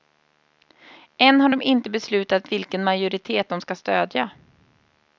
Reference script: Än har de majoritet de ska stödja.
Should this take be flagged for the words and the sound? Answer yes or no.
yes